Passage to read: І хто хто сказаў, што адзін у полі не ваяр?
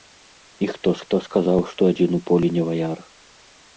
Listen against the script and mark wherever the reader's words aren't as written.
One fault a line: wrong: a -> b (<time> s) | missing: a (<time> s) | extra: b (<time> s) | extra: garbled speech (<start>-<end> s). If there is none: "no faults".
no faults